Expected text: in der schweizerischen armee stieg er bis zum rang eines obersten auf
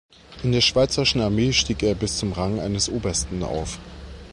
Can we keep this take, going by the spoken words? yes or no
yes